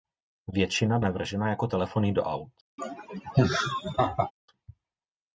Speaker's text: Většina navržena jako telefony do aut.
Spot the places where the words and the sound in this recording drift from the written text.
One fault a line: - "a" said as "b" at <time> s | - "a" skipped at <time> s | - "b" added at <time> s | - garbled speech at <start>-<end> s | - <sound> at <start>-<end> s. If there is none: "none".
- laugh at 2.8-4.3 s